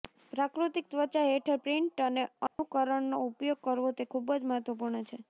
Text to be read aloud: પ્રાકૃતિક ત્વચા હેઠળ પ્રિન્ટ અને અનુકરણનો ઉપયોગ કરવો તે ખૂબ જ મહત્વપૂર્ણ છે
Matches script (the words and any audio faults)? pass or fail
fail